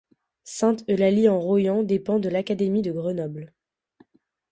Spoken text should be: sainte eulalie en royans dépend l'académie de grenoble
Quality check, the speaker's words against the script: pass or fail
fail